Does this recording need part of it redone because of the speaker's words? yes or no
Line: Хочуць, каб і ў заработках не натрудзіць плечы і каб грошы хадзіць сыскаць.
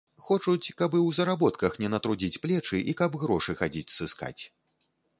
no